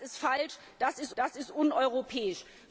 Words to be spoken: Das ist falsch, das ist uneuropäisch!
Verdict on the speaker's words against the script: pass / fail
fail